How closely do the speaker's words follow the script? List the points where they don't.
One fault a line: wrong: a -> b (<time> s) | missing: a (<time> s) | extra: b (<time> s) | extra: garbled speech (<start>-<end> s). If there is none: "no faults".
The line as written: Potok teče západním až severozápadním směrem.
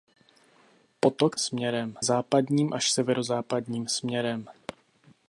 wrong: teče -> směrem (1.4 s)